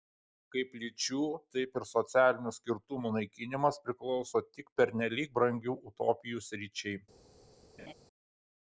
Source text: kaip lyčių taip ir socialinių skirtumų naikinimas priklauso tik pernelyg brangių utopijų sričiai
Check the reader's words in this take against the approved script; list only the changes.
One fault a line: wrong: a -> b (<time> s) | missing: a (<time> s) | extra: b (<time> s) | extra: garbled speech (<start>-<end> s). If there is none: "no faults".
no faults